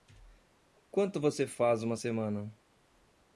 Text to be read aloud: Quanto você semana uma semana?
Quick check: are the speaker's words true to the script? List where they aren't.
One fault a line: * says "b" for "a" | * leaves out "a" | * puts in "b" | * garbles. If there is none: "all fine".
* says "faz" for "semana"